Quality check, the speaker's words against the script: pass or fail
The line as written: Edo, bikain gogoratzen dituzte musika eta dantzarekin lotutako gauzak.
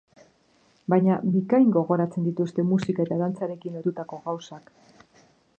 fail